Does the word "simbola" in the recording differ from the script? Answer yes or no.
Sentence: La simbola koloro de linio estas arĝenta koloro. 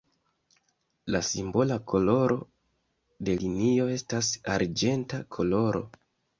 no